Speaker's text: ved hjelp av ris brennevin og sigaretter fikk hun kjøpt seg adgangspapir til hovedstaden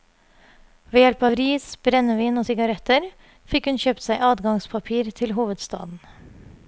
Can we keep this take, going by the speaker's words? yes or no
yes